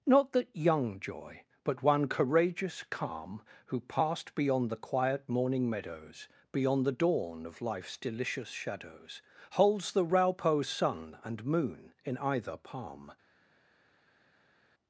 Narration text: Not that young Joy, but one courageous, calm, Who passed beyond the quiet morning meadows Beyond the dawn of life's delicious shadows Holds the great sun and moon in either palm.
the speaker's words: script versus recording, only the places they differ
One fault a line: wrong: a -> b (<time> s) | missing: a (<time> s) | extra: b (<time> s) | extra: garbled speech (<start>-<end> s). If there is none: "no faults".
wrong: great -> raupo (10.1 s)